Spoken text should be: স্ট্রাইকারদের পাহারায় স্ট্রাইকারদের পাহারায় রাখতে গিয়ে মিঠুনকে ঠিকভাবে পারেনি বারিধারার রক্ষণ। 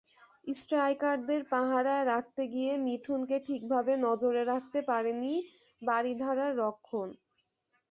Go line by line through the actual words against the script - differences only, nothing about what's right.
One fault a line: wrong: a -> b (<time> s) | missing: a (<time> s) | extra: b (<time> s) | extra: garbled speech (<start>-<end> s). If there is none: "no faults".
missing: স্ট্রাইকারদের পাহারায় (2.0 s)
extra: নজরে রাখতে (4.0 s)